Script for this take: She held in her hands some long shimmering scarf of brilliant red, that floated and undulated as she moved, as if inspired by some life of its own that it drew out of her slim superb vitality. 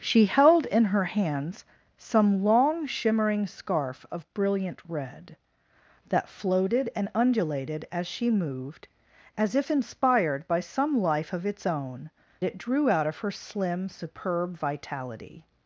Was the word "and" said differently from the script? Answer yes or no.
no